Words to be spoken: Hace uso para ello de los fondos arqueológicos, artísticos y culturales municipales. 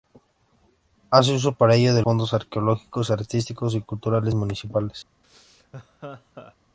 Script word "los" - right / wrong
wrong